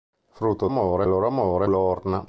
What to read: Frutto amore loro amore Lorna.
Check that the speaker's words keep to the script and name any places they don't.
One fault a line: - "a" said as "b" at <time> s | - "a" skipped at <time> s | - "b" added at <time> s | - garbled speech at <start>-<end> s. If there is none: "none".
none